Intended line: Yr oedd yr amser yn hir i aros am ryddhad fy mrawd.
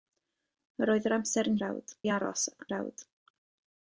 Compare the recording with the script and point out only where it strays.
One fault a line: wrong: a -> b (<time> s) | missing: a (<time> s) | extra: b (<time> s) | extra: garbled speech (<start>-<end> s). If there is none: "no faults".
wrong: hir -> mrawd (1.6 s)
missing: am ryddhad fy (2.5 s)